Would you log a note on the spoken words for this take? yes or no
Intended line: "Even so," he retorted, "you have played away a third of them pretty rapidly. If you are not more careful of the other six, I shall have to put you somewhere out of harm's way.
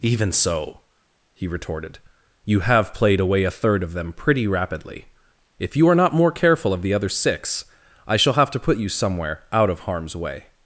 no